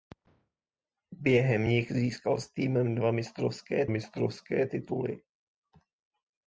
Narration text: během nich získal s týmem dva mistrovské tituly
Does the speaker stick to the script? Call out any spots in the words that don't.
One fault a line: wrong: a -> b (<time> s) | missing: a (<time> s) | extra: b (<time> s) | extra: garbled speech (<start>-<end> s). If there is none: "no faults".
extra: mistrovské (3.9 s)